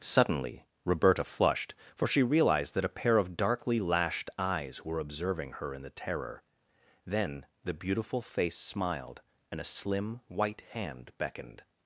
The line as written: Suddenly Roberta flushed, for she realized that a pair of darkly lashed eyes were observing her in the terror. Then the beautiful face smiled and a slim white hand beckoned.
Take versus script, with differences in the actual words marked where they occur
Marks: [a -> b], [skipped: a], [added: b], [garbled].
Suddenly Roberta flushed, for she realized that a pair of darkly lashed eyes were observing her in the terror. Then the beautiful face smiled and a slim white hand beckoned.